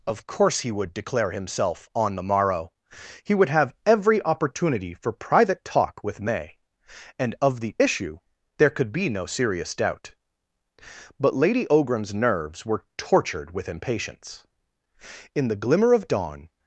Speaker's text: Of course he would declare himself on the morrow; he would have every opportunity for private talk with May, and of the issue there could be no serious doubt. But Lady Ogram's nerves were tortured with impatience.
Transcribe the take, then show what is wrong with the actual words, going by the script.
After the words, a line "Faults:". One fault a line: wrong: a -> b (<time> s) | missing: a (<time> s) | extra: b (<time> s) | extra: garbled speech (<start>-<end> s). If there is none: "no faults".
Of course he would declare himself on the morrow; he would have every opportunity for private talk with May, and of the issue there could be no serious doubt. But Lady Ogram's nerves were tortured with impatience. In the glimmer of dawn
Faults:
extra: In the glimmer of dawn (15.3 s)